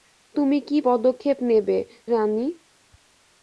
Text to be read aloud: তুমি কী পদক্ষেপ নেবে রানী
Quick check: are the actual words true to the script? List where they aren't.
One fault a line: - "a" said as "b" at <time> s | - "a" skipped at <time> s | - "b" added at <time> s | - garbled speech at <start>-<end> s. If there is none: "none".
none